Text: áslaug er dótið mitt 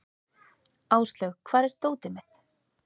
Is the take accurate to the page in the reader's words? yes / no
no